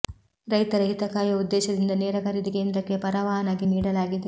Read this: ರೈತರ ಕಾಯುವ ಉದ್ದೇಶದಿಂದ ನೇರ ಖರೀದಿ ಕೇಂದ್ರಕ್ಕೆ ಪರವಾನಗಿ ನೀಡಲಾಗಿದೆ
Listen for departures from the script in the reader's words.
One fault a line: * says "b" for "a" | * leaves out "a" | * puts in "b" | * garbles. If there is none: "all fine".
* puts in "ಹಿತ"